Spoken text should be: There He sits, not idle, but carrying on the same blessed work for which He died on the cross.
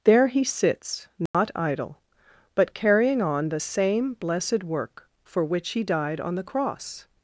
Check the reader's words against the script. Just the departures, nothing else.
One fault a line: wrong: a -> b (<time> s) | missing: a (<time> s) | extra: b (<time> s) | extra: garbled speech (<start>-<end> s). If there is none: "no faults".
no faults